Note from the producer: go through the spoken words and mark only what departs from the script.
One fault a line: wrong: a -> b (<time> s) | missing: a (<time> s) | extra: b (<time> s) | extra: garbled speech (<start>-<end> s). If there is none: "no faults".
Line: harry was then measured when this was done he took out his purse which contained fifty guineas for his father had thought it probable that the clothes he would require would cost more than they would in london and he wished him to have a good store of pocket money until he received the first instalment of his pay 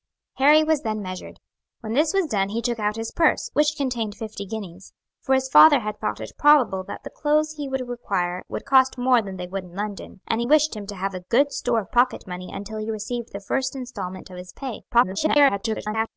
extra: garbled speech (14.9-16.1 s)